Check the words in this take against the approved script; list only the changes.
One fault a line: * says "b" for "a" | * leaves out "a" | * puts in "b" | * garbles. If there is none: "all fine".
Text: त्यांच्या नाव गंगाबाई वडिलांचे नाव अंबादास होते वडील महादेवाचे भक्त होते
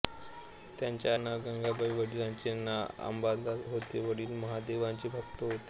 all fine